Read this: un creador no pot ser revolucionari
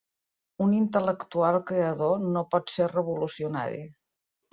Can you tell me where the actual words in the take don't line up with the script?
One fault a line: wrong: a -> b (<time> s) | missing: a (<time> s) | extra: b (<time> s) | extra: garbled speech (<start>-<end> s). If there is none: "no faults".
extra: intel·lectual (0.8 s)